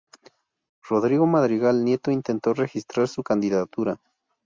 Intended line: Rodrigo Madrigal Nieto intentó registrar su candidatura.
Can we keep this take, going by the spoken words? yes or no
yes